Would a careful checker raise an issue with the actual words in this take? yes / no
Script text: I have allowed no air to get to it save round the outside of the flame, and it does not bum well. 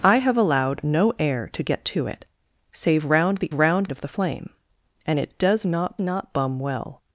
yes